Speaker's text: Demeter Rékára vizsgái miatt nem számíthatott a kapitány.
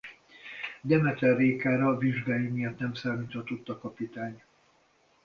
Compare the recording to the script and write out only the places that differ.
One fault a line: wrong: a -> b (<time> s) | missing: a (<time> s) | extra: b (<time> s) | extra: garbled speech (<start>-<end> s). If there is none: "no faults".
no faults